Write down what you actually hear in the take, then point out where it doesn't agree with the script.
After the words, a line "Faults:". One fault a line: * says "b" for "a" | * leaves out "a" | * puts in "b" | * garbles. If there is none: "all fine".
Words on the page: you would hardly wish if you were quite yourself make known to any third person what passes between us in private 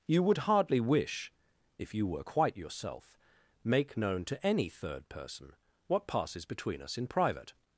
you would hardly wish if you were quite yourself make known to any third person what passes between us in private
Faults:
all fine